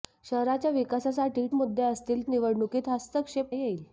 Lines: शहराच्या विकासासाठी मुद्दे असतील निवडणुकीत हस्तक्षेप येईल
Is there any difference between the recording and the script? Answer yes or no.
no